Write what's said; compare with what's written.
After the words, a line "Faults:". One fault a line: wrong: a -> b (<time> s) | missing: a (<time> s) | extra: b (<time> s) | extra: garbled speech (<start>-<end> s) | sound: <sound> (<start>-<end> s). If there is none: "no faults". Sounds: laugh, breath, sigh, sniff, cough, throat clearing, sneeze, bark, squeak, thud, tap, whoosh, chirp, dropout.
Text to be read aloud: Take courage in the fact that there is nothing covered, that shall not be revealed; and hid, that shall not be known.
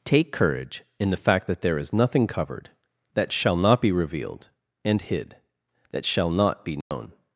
Take courage in the fact that there is nothing covered, that shall not be revealed; and hid, that shall not be known.
Faults:
sound: dropout (6.8-6.9 s)